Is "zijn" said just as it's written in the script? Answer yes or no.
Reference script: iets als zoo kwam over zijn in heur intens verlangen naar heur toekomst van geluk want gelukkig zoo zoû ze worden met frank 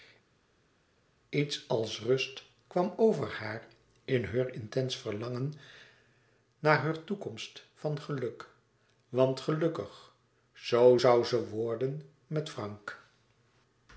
no